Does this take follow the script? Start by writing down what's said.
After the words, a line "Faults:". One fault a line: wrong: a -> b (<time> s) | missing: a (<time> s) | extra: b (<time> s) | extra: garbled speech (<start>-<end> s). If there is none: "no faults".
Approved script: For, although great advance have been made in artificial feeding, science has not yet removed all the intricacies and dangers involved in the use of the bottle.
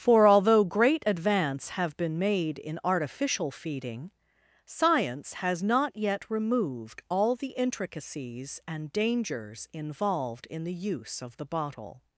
For, although great advance have been made in artificial feeding, science has not yet removed all the intricacies and dangers involved in the use of the bottle.
Faults:
no faults